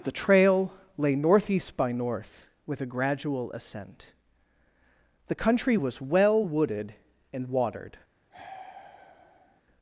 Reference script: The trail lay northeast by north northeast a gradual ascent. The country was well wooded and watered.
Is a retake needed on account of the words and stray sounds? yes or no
yes